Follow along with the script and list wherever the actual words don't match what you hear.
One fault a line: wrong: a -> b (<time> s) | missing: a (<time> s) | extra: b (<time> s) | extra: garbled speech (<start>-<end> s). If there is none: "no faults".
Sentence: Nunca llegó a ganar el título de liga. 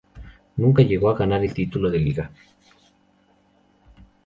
no faults